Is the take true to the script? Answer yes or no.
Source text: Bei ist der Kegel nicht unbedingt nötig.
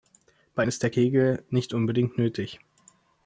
yes